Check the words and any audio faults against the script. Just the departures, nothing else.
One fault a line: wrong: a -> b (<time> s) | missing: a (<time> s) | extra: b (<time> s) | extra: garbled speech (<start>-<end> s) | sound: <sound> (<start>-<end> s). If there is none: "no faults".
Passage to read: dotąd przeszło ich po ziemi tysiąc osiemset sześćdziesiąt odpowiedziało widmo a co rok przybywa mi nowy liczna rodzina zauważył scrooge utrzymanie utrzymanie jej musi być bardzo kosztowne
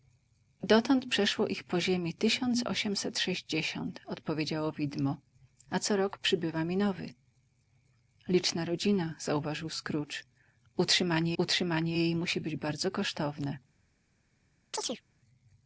sound: chirp (14.7-15.0 s)